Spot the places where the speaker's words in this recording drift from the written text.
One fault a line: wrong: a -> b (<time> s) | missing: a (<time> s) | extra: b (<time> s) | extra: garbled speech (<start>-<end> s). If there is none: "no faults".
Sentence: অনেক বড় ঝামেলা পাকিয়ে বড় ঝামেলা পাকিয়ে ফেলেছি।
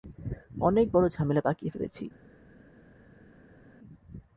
missing: বড় ঝামেলা পাকিয়ে (1.7 s)